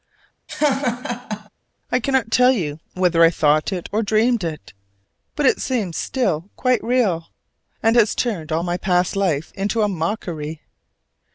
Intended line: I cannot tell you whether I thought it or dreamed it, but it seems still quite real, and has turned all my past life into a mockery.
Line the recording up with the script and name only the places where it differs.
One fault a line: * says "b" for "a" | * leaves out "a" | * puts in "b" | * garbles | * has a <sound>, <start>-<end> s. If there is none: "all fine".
* has a laugh, 0.5-1.5 s